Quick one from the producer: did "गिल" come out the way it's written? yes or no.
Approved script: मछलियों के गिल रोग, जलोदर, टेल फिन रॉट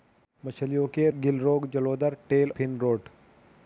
yes